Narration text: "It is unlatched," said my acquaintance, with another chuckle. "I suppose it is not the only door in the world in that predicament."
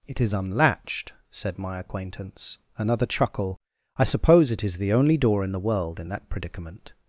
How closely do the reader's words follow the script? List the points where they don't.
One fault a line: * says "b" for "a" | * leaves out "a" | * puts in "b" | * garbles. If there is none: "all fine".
* leaves out "with"
* leaves out "not"